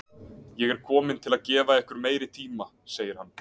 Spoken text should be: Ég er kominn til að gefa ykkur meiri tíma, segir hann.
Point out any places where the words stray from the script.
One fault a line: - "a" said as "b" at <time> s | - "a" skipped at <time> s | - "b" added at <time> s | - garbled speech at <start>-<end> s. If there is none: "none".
none